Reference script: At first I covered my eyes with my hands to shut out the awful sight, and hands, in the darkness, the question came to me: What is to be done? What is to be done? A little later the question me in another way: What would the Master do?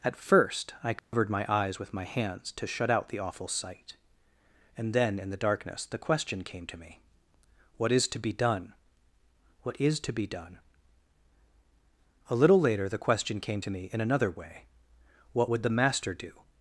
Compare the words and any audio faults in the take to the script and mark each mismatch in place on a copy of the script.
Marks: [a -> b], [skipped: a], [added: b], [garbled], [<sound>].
At first I covered [dropout] my eyes with my hands to shut out the awful sight, and [hands, -> then] in the darkness, the question came to me: What is to be done? What is to be done? A little later the question [added: came to] me in another way: What would the Master do?